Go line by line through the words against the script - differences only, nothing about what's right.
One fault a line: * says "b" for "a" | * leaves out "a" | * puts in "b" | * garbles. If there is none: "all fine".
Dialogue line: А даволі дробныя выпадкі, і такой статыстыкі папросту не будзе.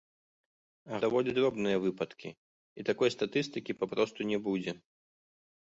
all fine